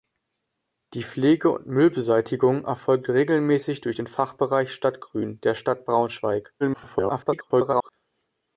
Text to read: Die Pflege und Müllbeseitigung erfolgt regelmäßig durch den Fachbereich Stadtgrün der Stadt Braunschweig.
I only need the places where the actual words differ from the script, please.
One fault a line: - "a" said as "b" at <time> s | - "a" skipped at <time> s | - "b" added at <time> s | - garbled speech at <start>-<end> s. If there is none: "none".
- garbled speech at 6.6-7.9 s